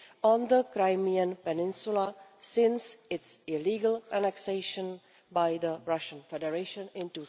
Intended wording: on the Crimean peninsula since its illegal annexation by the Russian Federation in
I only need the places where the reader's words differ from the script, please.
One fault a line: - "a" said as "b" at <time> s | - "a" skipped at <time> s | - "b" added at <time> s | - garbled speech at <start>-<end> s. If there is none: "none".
none